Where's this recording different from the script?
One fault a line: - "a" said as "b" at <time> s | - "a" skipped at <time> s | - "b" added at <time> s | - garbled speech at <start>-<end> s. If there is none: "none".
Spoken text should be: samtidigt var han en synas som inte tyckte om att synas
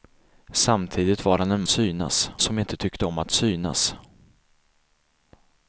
none